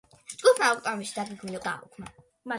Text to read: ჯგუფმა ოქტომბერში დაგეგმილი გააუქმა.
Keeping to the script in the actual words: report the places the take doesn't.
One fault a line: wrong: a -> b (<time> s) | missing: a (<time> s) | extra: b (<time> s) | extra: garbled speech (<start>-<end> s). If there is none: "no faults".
no faults